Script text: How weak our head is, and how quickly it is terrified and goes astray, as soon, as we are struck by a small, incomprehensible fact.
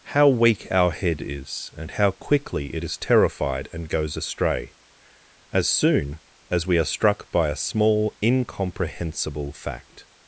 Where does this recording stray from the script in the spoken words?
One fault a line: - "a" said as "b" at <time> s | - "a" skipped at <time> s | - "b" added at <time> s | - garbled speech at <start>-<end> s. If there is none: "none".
none